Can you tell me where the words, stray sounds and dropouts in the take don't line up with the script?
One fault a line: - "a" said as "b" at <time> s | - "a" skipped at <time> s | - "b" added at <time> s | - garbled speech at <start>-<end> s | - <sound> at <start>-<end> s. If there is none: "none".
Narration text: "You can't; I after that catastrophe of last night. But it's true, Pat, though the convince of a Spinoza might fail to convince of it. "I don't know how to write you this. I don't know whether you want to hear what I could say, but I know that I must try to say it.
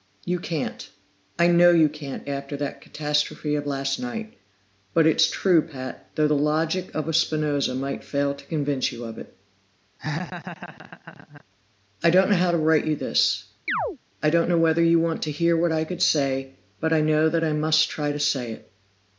- "know you can't" added at 1.4 s
- "convince" said as "logic" at 6.3 s
- "you" added at 8.9 s
- laugh at 10.0-11.4 s
- chirp at 13.7-14.0 s